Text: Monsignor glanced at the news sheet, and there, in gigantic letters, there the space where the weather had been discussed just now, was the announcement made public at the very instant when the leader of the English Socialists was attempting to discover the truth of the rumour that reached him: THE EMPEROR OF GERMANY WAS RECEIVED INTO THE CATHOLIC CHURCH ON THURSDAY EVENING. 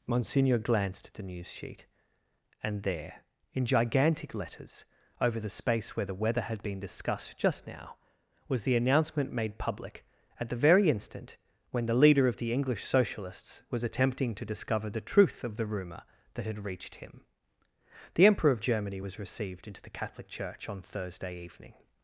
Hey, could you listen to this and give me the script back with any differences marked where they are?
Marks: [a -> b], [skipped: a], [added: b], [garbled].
Monsignor glanced at the news sheet, and there, in gigantic letters, [there -> over] the space where the weather had been discussed just now, was the announcement made public at the very instant when the leader of the English Socialists was attempting to discover the truth of the rumour that [added: had] reached him: THE EMPEROR OF GERMANY WAS RECEIVED INTO THE CATHOLIC CHURCH ON THURSDAY EVENING.